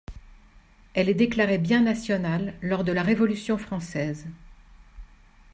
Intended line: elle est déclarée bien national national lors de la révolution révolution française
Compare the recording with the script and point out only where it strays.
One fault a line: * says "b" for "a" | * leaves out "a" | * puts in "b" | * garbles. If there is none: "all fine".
* leaves out "national"
* leaves out "révolution"